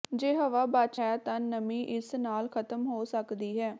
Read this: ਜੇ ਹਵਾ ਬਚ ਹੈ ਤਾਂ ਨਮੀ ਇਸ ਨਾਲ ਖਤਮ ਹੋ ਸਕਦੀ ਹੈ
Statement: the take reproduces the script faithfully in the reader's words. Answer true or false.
true